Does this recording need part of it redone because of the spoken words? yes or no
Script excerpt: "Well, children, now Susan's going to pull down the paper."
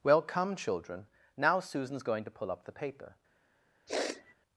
yes